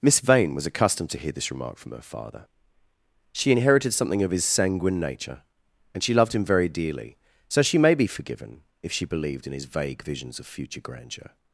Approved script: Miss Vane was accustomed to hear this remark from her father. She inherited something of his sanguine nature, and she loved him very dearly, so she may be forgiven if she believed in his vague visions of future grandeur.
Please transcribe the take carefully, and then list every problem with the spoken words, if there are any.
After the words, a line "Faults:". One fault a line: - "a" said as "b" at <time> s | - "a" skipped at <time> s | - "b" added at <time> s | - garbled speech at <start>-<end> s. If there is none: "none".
Miss Vane was accustomed to hear this remark from her father. She inherited something of his sanguine nature, and she loved him very dearly, so she may be forgiven if she believed in his vague visions of future grandeur.
Faults:
none